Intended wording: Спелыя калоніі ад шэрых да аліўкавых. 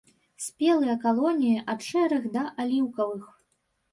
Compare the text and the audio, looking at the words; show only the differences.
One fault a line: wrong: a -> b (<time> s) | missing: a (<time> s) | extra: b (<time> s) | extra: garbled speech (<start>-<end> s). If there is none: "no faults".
no faults